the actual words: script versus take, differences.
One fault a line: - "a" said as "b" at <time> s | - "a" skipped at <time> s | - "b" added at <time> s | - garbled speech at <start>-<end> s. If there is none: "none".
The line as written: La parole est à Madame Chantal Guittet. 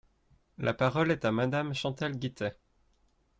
none